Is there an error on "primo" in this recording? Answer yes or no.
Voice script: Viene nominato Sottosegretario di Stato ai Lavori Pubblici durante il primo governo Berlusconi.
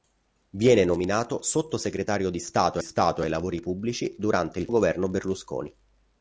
yes